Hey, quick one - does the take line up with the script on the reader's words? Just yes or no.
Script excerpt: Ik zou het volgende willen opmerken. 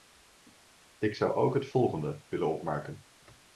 no